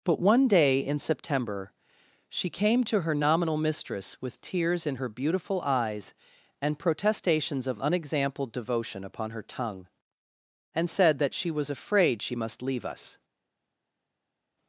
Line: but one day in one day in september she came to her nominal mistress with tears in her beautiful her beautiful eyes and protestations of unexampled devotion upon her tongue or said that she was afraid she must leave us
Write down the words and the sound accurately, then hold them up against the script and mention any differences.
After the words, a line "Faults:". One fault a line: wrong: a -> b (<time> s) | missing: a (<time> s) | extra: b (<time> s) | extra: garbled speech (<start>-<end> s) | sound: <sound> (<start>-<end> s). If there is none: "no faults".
but one day in september she came to her nominal mistress with tears in her beautiful eyes and protestations of unexampled devotion upon her tongue and said that she was afraid she must leave us
Faults:
missing: one day in (1.0 s)
missing: her beautiful (5.6 s)
wrong: or -> and (10.7 s)